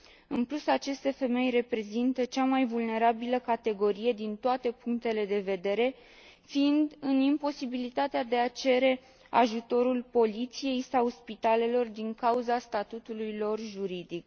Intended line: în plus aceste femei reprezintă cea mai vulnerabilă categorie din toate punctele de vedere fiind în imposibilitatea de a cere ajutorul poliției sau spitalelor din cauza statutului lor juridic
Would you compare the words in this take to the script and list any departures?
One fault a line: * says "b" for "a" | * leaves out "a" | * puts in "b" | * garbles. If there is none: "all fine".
all fine